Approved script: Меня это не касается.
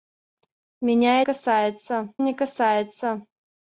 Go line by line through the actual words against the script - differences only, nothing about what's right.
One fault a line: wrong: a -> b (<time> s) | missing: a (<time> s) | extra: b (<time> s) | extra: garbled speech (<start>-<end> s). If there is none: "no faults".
wrong: это -> касается (1.2 s)